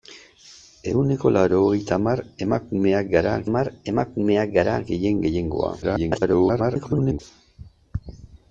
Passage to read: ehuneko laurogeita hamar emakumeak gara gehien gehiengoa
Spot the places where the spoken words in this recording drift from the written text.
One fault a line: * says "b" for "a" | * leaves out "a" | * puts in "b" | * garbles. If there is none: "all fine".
* puts in "hamar emakumeak gara"
* garbles